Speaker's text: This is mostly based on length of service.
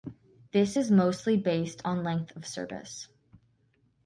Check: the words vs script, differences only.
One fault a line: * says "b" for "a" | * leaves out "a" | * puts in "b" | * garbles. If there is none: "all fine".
all fine